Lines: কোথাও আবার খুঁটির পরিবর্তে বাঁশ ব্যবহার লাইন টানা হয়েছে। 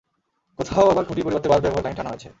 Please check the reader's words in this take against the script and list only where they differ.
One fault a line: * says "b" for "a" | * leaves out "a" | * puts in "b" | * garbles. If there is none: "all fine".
all fine